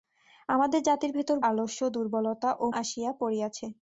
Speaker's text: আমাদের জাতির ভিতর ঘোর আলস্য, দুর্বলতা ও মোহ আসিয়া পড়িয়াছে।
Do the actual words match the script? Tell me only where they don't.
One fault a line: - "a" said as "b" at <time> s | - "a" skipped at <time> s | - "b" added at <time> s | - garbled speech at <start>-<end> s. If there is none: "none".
- "ঘোর" skipped at 1.4 s
- "মোহ" skipped at 2.7 s